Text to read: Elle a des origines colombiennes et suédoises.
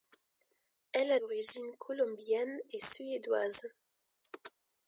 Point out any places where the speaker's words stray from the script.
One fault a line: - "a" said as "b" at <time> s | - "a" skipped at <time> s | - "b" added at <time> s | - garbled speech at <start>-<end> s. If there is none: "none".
- "des" skipped at 1.2 s